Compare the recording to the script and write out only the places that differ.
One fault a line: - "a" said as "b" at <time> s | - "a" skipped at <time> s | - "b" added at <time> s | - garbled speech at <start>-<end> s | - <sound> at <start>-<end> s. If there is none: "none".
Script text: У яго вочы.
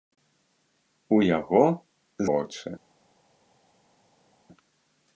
none